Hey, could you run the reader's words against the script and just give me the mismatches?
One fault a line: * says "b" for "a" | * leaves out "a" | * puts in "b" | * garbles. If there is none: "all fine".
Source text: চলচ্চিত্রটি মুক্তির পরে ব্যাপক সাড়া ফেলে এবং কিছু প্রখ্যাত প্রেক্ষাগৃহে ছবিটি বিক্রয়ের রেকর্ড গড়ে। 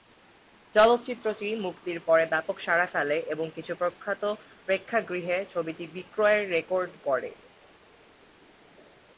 all fine